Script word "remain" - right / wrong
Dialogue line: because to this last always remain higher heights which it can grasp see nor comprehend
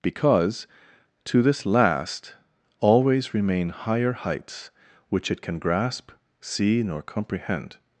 right